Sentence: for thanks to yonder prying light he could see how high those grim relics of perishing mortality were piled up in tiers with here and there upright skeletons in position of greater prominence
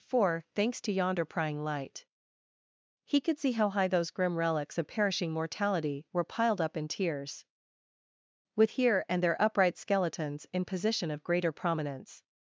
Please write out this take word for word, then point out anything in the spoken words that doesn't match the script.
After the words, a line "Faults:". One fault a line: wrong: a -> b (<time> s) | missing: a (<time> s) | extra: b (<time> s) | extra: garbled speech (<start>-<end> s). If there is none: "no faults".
for thanks to yonder prying light he could see how high those grim relics of perishing mortality were piled up in tiers with here and there upright skeletons in position of greater prominence
Faults:
no faults